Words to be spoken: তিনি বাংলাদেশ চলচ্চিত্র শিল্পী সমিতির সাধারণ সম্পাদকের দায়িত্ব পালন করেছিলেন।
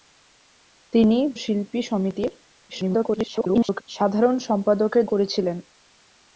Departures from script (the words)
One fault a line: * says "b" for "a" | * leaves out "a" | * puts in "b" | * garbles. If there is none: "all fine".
* leaves out "বাংলাদেশ চলচ্চিত্র"
* garbles
* leaves out "দায়িত্ব পালন"